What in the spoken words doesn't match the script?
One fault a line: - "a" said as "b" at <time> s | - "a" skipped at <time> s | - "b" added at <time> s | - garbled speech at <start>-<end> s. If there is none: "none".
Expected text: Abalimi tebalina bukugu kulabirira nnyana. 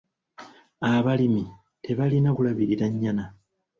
- "bukugu" skipped at 2.3 s